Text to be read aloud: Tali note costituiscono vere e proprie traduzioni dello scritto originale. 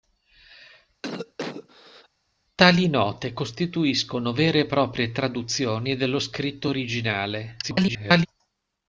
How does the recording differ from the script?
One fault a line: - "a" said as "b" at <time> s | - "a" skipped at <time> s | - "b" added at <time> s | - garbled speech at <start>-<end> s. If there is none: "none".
- garbled speech at 7.6-8.3 s